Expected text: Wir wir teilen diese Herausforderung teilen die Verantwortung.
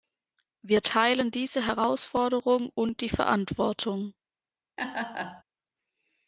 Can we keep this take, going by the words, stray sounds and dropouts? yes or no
no